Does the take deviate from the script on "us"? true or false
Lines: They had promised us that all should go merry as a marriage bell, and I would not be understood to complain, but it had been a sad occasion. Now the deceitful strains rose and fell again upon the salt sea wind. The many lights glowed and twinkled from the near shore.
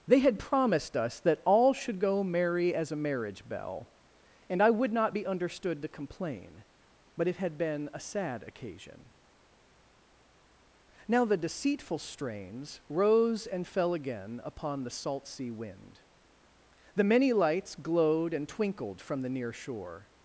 false